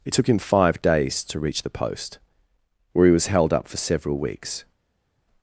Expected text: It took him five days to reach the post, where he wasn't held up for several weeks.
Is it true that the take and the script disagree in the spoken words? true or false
true